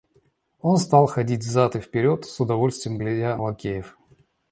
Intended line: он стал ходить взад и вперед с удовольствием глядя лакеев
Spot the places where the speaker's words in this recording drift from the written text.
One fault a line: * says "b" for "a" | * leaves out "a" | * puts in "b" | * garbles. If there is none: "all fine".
all fine